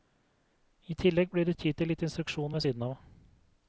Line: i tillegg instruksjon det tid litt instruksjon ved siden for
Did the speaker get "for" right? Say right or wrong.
wrong